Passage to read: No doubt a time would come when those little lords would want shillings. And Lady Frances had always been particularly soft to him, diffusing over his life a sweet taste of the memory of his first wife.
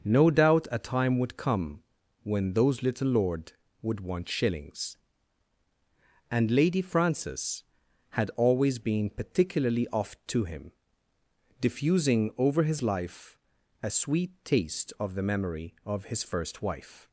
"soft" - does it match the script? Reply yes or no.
no